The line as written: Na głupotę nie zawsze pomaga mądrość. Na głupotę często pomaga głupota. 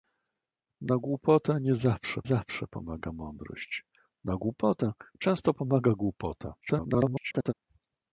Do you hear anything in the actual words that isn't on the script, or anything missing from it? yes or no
yes